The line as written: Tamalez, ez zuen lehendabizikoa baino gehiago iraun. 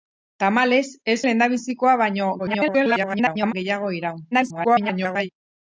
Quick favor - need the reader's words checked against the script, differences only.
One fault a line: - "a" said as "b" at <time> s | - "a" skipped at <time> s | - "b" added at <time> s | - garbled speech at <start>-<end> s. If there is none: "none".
- "zuen" skipped at 1.2 s
- garbled speech at 2.4-3.5 s
- garbled speech at 4.3-5.3 s